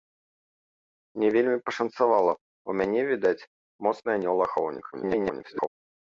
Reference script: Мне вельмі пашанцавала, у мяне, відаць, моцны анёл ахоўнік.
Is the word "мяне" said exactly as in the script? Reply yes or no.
yes